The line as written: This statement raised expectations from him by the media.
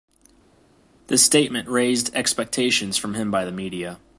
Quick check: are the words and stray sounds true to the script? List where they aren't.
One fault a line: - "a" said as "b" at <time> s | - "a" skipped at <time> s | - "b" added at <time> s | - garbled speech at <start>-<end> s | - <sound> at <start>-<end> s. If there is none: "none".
none